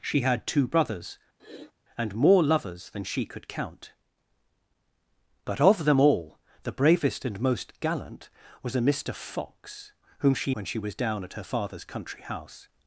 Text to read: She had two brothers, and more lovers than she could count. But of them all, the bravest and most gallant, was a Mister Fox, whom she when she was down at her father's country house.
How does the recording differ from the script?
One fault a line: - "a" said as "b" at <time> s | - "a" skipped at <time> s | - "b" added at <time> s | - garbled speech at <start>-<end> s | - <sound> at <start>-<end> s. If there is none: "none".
- sniff at 1.4-1.7 s